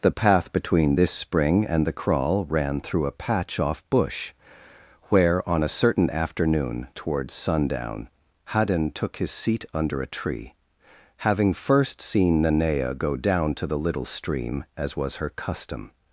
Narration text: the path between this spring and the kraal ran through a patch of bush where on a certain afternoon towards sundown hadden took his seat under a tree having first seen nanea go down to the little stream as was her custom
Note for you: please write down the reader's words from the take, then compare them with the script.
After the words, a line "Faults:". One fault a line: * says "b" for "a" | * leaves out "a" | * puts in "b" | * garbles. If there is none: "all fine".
the path between this spring and the kraal ran through a patch off bush where on a certain afternoon towards sundown hadden took his seat under a tree having first seen nanea go down to the little stream as was her custom
Faults:
* says "off" for "of"